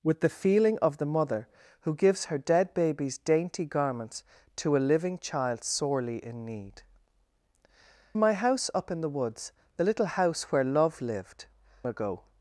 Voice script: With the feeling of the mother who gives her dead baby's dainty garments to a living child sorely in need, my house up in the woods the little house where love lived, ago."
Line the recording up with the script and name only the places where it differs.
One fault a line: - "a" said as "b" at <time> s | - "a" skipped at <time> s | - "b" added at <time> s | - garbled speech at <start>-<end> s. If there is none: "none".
none